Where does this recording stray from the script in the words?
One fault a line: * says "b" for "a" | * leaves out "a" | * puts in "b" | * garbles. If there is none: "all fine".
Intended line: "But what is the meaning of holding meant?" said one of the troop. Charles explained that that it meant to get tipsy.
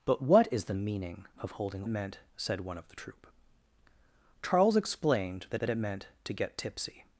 all fine